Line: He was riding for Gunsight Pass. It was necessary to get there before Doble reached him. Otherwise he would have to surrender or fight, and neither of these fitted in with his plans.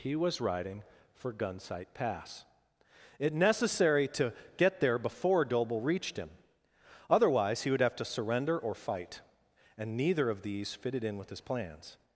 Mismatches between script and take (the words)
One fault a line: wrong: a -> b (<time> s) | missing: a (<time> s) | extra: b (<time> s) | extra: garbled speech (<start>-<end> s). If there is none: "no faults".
missing: was (3.3 s)